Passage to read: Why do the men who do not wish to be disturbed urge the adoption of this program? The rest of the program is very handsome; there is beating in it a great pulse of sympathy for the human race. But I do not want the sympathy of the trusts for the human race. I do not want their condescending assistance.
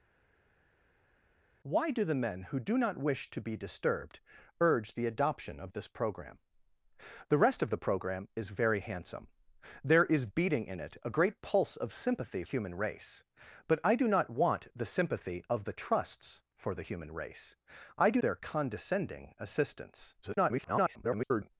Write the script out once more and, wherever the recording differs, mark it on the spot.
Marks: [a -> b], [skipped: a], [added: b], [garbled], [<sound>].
Why do the men who do not wish to be disturbed urge the adoption of this program? The rest of the program is very handsome; there is beating in it a great pulse of sympathy [skipped: for the] human race. But I do not want the sympathy of the trusts for the human race. I do [skipped: not want] their condescending assistance. [garbled]